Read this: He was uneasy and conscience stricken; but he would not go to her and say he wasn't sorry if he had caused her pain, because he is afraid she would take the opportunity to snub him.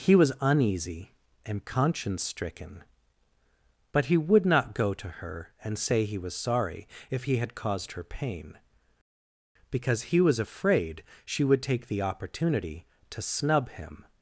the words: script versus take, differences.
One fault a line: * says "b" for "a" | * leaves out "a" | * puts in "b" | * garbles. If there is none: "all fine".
* says "was" for "wasn't"
* says "was" for "is"